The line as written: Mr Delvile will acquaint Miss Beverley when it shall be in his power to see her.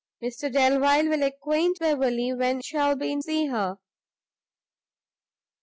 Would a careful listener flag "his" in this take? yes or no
yes